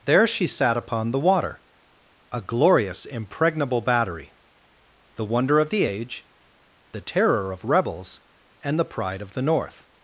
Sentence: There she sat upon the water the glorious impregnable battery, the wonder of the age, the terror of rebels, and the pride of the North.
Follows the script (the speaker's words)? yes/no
no